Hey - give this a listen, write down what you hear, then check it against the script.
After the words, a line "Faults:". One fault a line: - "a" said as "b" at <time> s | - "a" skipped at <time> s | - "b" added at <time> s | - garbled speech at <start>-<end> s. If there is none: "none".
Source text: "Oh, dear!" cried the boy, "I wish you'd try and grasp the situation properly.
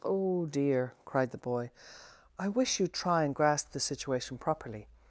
"Oh, dear!" cried the boy, "I wish you'd try and grasp the situation properly.
Faults:
none